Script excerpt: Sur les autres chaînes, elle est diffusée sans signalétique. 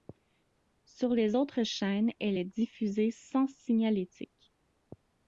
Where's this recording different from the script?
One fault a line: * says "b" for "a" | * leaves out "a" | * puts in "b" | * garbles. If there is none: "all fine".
all fine